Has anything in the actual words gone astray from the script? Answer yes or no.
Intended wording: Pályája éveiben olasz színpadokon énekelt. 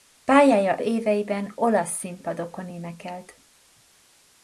no